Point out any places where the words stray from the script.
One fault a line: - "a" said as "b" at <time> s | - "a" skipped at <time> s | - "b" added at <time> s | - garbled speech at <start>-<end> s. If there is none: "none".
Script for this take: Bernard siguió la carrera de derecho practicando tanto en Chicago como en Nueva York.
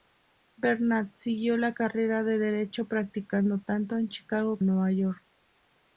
- "como" skipped at 4.6 s